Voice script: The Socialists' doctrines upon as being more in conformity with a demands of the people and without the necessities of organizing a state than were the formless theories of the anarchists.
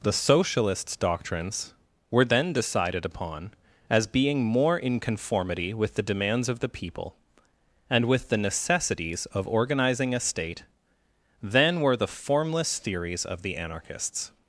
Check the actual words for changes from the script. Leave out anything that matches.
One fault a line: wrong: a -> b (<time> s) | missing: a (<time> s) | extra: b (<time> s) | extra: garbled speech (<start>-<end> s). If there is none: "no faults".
extra: were then decided (2.1 s)
wrong: a -> the (6.0 s)
wrong: without -> with (8.1 s)